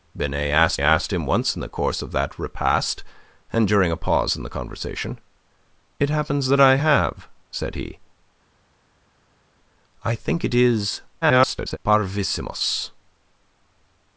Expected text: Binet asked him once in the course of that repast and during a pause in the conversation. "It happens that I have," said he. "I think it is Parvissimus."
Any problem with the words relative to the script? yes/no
yes